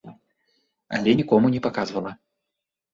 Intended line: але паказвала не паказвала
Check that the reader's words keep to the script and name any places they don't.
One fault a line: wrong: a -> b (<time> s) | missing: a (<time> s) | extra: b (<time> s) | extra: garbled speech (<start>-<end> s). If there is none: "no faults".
wrong: паказвала -> нікому (1.2 s)